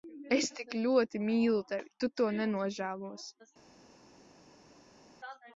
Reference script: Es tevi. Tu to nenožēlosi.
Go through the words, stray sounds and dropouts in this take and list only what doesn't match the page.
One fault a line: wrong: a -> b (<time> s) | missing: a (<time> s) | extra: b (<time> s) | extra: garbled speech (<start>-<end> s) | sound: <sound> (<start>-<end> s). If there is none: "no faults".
extra: tik ļoti mīlu (0.6 s)